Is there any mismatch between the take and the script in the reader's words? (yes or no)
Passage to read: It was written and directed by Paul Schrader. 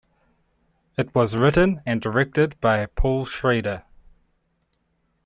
no